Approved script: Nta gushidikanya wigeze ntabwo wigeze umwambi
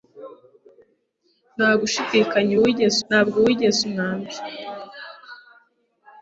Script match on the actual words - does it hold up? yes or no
yes